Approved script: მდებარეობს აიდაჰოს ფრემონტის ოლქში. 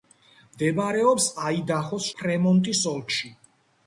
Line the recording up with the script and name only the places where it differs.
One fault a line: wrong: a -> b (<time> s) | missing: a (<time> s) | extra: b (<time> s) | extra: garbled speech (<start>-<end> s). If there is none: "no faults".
no faults